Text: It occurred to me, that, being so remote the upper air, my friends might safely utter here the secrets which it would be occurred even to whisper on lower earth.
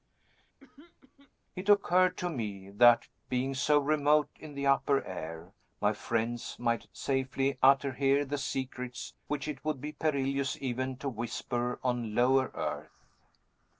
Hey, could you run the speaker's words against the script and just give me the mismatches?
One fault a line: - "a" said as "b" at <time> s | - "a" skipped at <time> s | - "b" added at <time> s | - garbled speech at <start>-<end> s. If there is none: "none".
- "in" added at 4.4 s
- "occurred" said as "perilous" at 9.9 s